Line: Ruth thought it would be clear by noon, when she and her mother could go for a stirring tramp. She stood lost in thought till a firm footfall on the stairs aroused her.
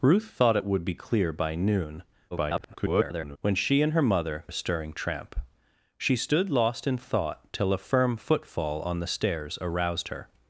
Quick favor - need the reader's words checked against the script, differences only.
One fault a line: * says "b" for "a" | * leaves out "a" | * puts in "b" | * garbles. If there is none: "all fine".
* garbles
* leaves out "could go for"